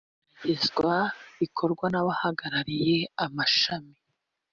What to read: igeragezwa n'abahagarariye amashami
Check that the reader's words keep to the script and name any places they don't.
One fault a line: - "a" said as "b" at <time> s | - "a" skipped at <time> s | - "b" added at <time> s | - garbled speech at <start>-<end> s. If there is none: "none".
- "rikorwa" added at 1.4 s